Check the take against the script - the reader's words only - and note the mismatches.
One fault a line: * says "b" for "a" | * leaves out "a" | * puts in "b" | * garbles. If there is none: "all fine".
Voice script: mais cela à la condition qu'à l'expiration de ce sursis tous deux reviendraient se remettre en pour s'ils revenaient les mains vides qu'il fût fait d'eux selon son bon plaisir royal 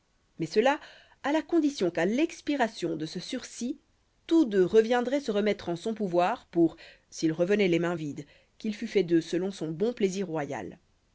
* puts in "son pouvoir"